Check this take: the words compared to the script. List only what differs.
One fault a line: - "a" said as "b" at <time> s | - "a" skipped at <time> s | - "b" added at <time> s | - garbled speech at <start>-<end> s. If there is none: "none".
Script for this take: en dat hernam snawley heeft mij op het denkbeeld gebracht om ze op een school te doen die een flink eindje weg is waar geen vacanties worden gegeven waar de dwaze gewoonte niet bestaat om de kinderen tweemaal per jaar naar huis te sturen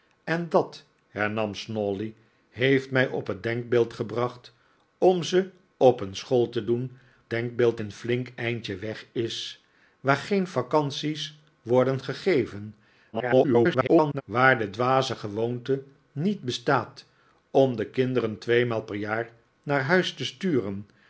- "die" said as "denkbeeld" at 7.3 s
- garbled speech at 13.1-14.2 s